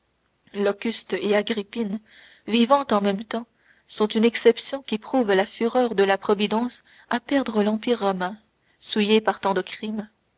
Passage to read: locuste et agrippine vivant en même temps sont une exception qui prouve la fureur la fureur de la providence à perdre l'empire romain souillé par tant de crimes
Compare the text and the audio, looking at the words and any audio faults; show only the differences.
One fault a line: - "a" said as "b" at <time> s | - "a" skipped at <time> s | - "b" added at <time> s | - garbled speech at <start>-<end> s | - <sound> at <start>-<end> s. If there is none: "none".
- "la fureur" skipped at 5.9 s